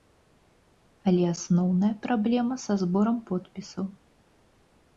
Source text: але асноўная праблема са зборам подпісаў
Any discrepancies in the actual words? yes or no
no